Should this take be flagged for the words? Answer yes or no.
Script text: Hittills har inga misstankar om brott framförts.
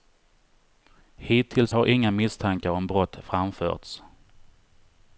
no